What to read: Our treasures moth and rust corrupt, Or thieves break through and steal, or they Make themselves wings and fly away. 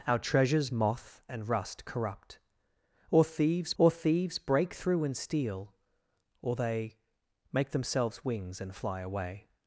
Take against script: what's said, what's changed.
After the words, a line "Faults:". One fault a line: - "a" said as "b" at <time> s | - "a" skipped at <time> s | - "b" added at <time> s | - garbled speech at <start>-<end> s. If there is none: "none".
Our treasures moth and rust corrupt, Or thieves Or thieves break through and steal, or they Make themselves wings and fly away.
Faults:
- "Or thieves" added at 3.8 s